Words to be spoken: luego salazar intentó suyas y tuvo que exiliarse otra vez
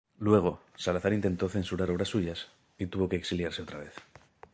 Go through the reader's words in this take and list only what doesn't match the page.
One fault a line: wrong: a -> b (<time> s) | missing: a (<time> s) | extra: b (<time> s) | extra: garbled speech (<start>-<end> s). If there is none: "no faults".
extra: censurar obras (1.5 s)